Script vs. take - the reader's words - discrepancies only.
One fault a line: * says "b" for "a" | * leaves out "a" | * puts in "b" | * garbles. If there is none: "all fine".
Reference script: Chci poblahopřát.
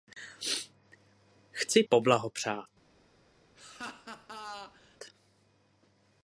all fine